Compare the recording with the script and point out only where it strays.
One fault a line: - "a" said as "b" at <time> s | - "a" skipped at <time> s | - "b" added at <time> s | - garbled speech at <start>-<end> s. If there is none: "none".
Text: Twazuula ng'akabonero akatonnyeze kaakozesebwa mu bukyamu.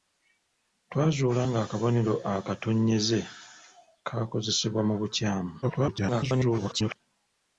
- garbled speech at 5.6-7.0 s